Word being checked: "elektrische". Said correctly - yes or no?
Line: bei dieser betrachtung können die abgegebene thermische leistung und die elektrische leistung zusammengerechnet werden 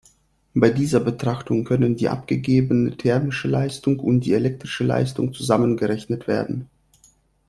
yes